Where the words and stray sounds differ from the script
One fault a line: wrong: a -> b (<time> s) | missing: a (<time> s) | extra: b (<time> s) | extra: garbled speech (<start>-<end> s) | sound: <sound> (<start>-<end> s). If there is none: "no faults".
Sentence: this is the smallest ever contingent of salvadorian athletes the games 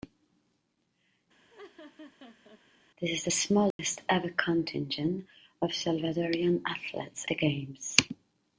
sound: laugh (1.5-2.6 s)
sound: dropout (3.7-3.8 s)